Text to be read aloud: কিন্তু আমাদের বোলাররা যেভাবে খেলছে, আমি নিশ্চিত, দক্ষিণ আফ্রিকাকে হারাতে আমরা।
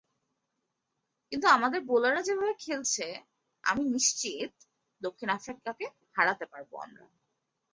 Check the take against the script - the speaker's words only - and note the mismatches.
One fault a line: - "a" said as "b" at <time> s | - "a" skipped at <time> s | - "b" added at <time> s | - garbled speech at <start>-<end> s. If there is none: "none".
- "পারব" added at 6.5 s